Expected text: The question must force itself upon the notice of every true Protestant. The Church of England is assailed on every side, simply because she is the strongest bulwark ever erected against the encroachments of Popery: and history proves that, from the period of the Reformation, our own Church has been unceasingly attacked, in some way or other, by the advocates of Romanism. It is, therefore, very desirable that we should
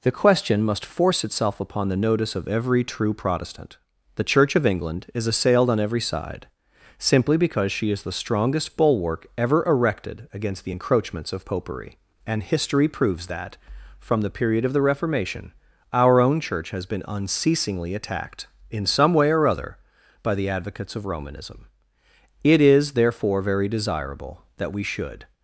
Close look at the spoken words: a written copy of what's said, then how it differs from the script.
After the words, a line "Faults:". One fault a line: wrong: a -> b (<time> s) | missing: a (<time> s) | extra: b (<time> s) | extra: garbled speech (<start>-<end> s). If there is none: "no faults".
The question must force itself upon the notice of every true Protestant. The Church of England is assailed on every side, simply because she is the strongest bulwark ever erected against the encroachments of Popery: and history proves that, from the period of the Reformation, our own Church has been unceasingly attacked, in some way or other, by the advocates of Romanism. It is, therefore, very desirable that we should
Faults:
no faults